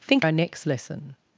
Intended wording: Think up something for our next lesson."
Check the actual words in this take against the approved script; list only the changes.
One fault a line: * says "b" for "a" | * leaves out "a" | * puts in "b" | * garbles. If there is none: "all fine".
* leaves out "up something for"